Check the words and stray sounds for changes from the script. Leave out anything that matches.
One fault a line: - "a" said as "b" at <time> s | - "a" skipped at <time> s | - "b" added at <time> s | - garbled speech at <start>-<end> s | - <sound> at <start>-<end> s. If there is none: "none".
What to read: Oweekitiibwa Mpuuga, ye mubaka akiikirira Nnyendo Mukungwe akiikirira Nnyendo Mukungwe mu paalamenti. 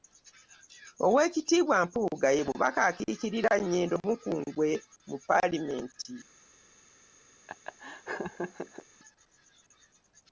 - "akiikirira Nnyendo Mukungwe" skipped at 4.7 s
- laugh at 7.5-8.9 s